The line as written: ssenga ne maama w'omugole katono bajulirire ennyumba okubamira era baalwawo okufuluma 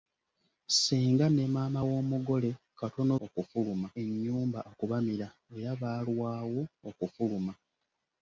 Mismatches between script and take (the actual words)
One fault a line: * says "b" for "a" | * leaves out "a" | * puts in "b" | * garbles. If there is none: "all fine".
* says "okufuluma" for "bajulirire"